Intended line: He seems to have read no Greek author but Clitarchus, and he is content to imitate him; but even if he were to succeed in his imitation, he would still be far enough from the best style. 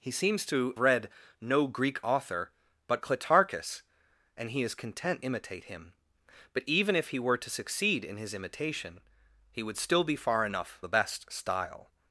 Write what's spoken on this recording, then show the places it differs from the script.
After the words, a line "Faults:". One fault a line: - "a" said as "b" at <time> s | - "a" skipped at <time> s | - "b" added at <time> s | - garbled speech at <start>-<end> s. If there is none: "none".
He seems to read no Greek author but Clitarchus, and he is content imitate him; but even if he were to succeed in his imitation, he would still be far enough the best style.
Faults:
- "have" skipped at 0.7 s
- "to" skipped at 5.2 s
- "from" skipped at 10.8 s